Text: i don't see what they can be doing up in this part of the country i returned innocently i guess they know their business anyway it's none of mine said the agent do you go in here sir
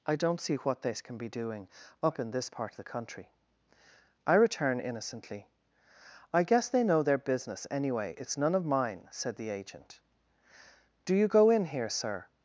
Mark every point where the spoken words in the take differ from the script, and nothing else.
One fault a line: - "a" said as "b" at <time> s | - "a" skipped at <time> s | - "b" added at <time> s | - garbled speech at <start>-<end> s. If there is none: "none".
- "returned" said as "return" at 4.3 s